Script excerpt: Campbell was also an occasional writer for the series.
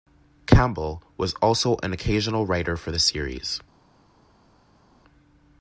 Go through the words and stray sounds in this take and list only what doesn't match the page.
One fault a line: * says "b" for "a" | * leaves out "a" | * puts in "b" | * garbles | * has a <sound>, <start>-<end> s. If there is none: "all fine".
all fine